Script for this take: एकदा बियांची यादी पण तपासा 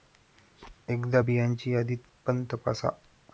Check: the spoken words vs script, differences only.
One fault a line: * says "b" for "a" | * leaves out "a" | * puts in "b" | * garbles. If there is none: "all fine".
all fine